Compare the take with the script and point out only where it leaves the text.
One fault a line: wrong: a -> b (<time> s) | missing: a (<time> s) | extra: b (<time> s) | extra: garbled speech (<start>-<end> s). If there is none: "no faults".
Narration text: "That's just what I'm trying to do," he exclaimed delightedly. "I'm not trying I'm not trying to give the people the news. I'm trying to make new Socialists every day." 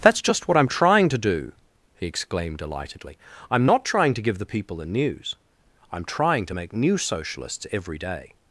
missing: I'm not trying (4.1 s)